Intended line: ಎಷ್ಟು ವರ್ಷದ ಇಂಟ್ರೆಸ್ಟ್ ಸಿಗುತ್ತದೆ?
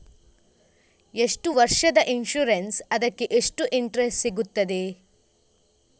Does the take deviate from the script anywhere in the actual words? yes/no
yes